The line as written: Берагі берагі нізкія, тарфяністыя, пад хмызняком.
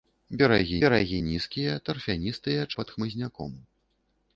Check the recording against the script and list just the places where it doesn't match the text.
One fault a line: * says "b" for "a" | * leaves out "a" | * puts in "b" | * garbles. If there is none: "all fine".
all fine